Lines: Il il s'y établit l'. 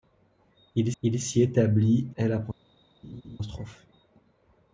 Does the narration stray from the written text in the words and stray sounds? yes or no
yes